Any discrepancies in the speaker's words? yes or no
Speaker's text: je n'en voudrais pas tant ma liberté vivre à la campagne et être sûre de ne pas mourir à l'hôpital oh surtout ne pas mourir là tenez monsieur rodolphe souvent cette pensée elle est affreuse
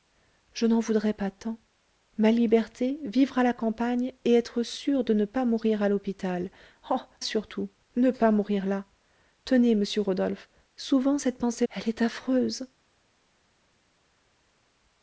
no